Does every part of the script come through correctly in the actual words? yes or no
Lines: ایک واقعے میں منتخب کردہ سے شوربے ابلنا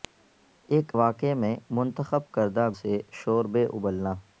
yes